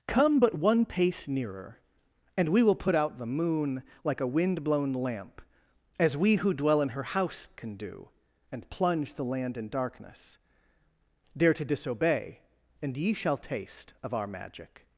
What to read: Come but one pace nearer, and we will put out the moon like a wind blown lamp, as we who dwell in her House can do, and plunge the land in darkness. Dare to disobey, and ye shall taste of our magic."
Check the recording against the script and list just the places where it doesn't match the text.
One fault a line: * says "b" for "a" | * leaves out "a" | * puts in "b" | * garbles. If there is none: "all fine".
all fine